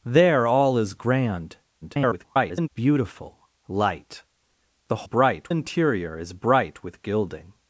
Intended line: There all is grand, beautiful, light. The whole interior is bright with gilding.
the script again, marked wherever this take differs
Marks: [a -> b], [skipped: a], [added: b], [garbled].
There all is grand, [garbled] beautiful, light. The [whole -> bright] interior is bright with gilding.